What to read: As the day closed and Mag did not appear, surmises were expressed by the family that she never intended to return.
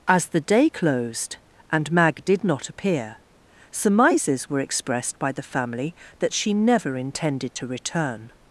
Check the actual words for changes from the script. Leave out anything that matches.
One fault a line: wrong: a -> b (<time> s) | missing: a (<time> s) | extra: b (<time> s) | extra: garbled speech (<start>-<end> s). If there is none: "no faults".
no faults